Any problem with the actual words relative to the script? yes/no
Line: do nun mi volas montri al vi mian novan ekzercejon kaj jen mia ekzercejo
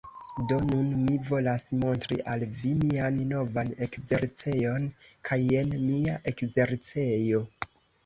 no